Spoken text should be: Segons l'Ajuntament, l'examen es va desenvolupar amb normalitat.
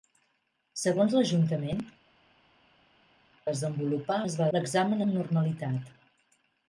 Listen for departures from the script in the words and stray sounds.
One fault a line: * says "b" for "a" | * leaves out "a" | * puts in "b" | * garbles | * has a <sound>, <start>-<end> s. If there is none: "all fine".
* says "desenvolupar" for "l'examen"
* says "l'examen" for "desenvolupar"